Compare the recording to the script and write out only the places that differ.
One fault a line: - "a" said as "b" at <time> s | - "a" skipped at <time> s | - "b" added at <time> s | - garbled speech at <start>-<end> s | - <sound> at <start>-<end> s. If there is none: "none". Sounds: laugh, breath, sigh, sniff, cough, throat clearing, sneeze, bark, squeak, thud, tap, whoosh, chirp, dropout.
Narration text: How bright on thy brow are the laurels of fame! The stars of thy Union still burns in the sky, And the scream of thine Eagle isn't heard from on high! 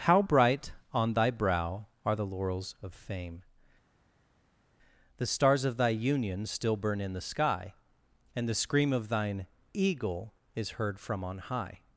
- "burns" said as "burn" at 6.7 s
- "isn't" said as "is" at 10.6 s